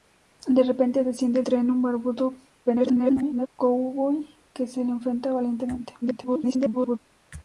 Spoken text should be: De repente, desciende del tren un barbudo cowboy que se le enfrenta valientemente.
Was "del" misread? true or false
true